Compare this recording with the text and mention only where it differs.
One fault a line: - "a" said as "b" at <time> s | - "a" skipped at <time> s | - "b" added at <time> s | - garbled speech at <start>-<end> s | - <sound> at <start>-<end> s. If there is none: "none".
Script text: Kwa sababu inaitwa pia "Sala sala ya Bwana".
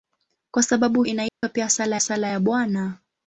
- dropout at 1.3-1.4 s